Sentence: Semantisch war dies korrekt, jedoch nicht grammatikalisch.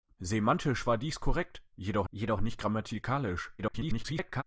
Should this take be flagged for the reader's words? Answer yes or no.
yes